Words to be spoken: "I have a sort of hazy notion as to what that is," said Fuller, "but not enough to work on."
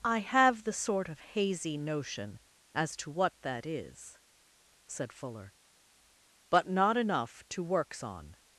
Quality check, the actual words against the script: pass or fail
fail